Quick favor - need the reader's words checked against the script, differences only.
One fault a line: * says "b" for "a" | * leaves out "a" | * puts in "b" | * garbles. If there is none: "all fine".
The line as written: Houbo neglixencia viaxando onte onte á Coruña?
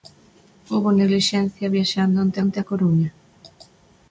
all fine